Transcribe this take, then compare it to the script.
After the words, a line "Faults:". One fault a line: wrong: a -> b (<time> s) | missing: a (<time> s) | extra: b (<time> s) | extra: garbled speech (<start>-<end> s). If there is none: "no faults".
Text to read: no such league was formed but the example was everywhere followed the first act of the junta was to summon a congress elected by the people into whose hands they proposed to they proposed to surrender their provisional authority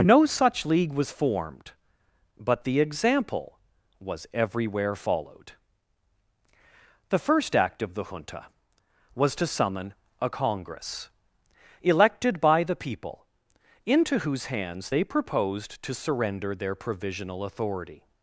no such league was formed but the example was everywhere followed the first act of the junta was to summon a congress elected by the people into whose hands they proposed to surrender their provisional authority
Faults:
missing: they proposed to (15.9 s)